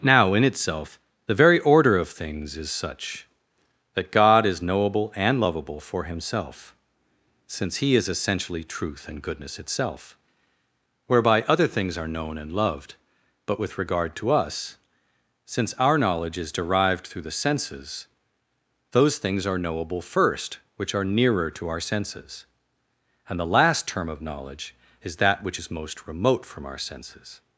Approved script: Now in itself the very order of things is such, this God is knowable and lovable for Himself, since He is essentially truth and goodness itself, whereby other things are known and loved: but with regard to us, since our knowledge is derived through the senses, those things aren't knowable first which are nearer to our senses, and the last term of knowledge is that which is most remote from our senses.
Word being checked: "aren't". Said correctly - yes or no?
no